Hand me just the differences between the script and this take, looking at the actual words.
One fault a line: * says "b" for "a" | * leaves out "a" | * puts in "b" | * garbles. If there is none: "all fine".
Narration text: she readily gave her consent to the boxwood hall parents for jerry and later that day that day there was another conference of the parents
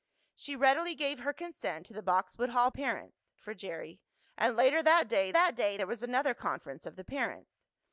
all fine